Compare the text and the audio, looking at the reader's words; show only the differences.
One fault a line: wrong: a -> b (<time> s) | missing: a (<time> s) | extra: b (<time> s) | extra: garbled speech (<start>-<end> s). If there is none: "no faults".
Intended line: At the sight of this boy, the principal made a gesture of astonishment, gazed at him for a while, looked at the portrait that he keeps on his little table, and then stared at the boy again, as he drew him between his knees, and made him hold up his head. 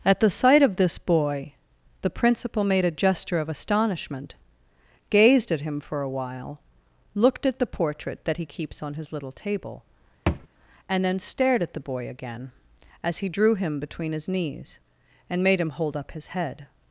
no faults